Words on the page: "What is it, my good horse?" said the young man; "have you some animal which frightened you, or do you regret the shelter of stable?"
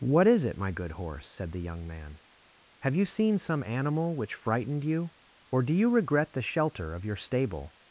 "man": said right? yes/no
yes